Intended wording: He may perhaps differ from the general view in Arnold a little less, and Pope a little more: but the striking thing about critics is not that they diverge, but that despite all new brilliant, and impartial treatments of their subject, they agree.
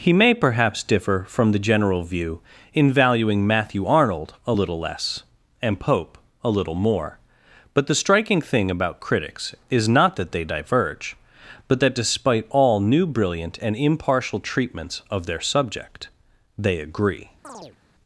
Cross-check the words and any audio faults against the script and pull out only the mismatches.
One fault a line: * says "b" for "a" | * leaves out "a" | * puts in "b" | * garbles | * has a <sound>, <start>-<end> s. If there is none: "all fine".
* puts in "valuing Matthew"
* has a chirp, 17.4-17.8 s